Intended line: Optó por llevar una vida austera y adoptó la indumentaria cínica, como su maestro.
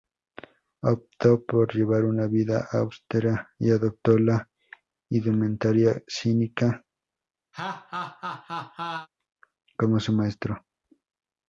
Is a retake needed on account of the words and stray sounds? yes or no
yes